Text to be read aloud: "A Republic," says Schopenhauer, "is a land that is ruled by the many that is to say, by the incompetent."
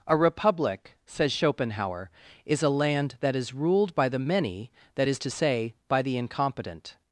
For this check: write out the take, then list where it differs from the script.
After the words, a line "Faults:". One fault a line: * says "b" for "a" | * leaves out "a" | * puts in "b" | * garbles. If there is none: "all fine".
"A Republic," says Schopenhauer, "is a land that is ruled by the many that is to say, by the incompetent."
Faults:
all fine